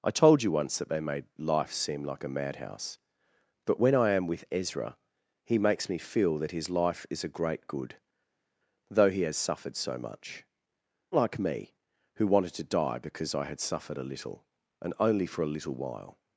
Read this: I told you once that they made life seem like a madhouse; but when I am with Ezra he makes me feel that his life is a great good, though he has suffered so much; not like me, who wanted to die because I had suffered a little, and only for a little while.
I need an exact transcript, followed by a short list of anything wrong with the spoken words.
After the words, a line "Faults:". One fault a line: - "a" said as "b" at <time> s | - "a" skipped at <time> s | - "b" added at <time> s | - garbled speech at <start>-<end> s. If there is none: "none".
I told you once that they made life seem like a madhouse; but when I am with Ezra he makes me feel that his life is a great good, though he has suffered so much; like me, who wanted to die because I had suffered a little, and only for a little while.
Faults:
- "not" skipped at 10.4 s